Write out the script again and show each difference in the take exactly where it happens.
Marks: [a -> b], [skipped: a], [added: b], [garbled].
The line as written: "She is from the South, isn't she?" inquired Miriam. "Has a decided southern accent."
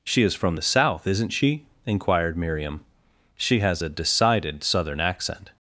"She is from the South, isn't she?" inquired Miriam. [added: She] "Has a decided southern accent."